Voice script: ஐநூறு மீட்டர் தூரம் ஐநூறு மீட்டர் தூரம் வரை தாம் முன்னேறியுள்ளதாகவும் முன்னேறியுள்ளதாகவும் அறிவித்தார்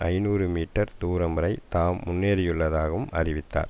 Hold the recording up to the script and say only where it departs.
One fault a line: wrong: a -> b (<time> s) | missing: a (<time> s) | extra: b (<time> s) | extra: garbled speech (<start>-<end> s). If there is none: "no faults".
missing: ஐநூறு மீட்டர் தூரம் (1.4 s)
missing: முன்னேறியுள்ளதாகவும் (3.1 s)